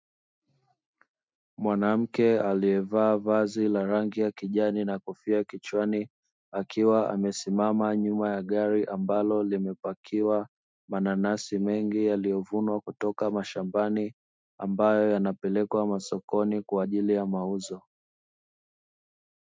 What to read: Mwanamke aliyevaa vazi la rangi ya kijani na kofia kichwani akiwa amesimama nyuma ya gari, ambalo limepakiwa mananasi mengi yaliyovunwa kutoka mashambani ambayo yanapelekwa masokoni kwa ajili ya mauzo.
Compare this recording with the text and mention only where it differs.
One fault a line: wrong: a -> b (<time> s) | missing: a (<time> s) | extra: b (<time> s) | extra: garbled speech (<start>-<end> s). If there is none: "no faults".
no faults